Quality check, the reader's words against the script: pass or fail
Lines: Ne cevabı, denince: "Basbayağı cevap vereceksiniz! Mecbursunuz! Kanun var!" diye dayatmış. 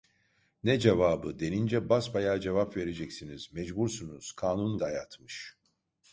fail